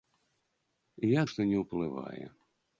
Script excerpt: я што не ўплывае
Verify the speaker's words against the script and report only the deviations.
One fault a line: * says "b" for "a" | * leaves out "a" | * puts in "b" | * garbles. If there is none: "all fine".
all fine